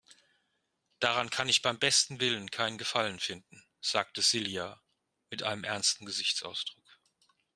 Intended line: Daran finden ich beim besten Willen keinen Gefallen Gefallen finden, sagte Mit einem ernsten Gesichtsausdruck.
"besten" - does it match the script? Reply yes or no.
yes